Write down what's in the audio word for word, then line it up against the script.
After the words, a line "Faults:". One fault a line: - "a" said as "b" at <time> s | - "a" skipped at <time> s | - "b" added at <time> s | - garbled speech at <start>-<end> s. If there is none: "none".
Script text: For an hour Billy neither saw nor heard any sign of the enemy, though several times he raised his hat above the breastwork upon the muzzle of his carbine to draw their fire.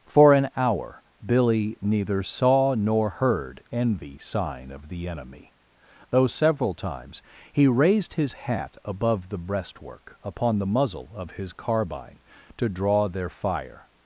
For an hour Billy neither saw nor heard envy sign of the enemy, though several times he raised his hat above the breastwork upon the muzzle of his carbine to draw their fire.
Faults:
- "any" said as "envy" at 3.7 s